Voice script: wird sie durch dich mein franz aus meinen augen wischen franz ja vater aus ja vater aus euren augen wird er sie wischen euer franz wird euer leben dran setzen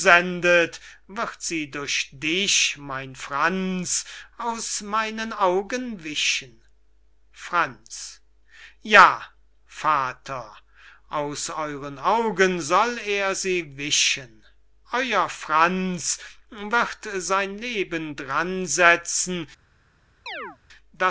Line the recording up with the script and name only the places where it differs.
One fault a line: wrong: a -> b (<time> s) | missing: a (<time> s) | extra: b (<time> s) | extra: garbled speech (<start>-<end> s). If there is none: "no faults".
missing: ja vater aus (11.5 s)
wrong: wird -> soll (12.6 s)
wrong: euer -> sein (17.1 s)